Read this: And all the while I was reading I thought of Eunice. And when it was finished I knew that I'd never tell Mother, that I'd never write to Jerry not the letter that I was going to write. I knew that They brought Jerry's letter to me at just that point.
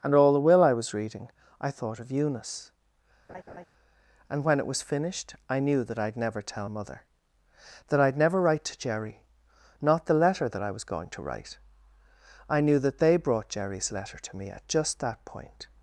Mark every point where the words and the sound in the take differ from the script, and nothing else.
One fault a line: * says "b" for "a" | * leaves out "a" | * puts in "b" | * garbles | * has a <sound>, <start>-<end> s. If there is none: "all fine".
* says "will" for "while"
* has a laugh, 3.3-3.7 s